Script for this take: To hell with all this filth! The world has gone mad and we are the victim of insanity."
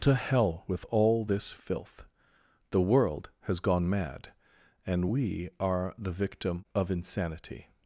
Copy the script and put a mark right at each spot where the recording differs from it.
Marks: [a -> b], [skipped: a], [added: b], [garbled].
To hell with all this filth! The world has gone mad and we are the victim of insanity."